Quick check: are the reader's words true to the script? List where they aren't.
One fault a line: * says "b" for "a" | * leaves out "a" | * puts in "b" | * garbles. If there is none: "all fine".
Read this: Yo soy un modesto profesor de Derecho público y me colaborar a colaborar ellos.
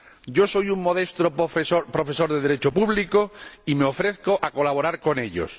* says "ofrezco" for "colaborar"
* puts in "con"